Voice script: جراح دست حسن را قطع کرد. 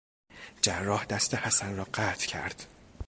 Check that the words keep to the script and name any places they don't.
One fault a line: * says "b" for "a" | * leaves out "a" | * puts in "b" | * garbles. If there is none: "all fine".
all fine